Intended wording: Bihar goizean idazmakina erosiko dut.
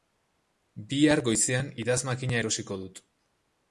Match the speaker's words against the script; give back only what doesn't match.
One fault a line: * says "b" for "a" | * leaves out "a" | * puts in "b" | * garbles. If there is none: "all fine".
all fine